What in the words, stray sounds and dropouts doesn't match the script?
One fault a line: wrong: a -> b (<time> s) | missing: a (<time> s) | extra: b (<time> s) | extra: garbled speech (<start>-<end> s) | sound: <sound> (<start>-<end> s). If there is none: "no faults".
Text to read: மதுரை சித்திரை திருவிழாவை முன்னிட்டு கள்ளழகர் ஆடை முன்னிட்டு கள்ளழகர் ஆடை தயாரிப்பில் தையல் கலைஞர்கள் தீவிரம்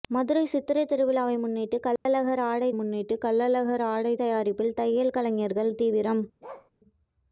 sound: dropout (2.0-2.1 s)
sound: bark (6.4-6.7 s)